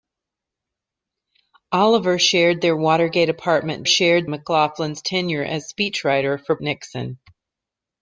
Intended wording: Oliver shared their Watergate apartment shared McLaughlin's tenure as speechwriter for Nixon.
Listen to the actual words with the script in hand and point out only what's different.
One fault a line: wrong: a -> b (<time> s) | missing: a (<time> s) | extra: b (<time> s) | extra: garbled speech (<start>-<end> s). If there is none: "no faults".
no faults